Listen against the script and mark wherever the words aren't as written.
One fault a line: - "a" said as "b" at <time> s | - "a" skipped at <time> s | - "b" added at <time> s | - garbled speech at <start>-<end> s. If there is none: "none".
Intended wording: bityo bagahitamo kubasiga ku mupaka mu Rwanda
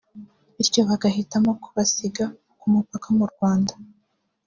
none